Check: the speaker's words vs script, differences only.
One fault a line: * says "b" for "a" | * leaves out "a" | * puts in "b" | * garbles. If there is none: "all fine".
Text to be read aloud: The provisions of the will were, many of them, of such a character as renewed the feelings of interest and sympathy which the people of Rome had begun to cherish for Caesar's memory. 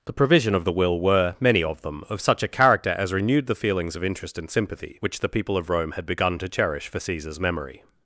* says "provision" for "provisions"